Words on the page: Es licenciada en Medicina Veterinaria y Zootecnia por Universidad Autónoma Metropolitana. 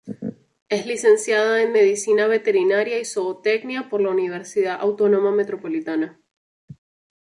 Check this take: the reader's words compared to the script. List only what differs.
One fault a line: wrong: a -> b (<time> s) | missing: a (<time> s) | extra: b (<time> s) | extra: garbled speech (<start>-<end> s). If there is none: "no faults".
extra: la (4.0 s)